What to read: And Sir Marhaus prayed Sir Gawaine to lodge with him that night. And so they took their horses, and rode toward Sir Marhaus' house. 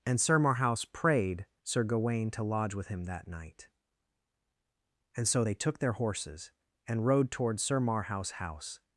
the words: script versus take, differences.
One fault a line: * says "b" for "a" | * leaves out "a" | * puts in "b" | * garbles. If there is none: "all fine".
all fine